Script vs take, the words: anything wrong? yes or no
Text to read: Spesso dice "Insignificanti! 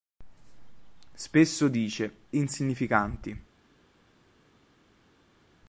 no